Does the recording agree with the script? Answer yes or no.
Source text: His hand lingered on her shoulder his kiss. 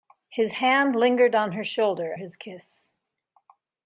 yes